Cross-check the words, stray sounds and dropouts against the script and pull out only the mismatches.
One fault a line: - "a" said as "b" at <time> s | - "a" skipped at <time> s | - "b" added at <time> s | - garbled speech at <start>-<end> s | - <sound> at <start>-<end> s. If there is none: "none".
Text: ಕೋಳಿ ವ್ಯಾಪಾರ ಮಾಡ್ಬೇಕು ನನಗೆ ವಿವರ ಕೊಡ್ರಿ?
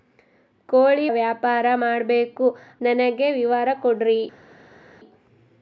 none